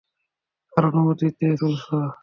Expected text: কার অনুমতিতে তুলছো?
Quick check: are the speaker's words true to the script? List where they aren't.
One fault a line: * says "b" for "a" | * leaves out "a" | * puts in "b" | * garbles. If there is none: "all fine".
all fine